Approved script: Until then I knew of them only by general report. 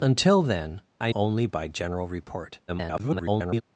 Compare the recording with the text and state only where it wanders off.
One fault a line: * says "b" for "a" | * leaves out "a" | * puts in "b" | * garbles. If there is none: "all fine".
* leaves out "knew of them"
* garbles